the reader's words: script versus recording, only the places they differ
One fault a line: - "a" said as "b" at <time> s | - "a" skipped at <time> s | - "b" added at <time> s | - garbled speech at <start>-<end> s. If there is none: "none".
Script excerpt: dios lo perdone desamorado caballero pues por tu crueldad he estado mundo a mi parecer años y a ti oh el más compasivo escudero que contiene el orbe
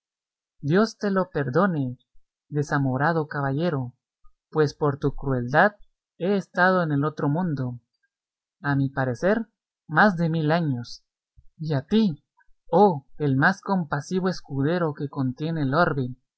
- "te" added at 1.0 s
- "en el otro" added at 6.8 s
- "más de mil" added at 9.9 s